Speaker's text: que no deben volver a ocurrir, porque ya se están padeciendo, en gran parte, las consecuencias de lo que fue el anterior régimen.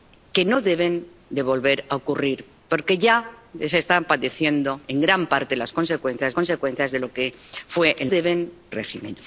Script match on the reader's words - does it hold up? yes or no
no